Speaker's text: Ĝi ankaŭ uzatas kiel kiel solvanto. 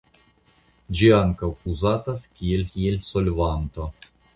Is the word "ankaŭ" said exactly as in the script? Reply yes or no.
yes